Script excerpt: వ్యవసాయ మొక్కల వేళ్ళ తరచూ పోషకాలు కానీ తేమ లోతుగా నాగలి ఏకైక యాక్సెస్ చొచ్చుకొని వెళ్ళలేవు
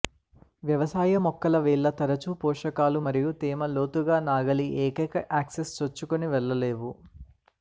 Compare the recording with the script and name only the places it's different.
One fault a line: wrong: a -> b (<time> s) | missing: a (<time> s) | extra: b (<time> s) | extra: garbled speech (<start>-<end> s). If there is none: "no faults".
wrong: కానీ -> మరియు (3.1 s)